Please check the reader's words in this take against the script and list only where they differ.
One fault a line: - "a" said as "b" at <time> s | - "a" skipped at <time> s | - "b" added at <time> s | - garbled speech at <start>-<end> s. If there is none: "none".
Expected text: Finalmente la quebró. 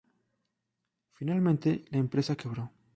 - "empresa" added at 2.0 s